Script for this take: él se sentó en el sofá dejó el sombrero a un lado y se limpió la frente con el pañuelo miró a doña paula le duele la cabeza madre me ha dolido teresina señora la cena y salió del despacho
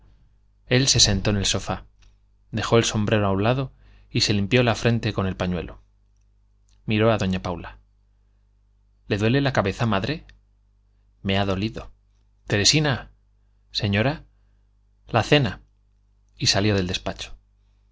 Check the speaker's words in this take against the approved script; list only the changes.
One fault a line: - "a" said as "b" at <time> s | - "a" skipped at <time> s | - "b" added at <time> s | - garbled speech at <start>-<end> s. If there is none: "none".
none